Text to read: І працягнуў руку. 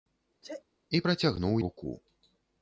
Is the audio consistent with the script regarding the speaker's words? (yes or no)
yes